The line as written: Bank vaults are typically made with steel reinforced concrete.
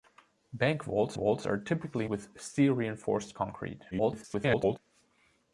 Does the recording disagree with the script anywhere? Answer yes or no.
yes